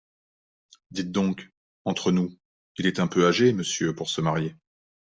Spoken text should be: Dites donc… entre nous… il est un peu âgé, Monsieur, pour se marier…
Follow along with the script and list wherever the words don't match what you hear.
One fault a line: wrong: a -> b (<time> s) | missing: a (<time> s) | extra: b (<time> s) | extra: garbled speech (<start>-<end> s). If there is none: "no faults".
no faults